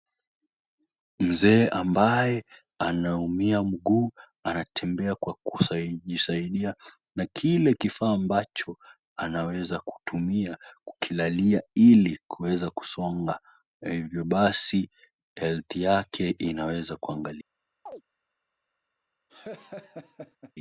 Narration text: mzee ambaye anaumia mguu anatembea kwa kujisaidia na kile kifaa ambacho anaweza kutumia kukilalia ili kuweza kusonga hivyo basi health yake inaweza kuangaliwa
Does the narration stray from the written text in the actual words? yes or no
no